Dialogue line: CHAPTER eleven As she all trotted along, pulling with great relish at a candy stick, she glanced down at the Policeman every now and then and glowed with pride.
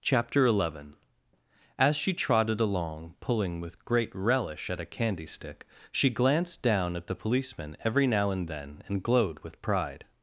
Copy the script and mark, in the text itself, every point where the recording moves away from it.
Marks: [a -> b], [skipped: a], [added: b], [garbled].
CHAPTER eleven As she [skipped: all] trotted along, pulling with great relish at a candy stick, she glanced down at the Policeman every now and then and glowed with pride.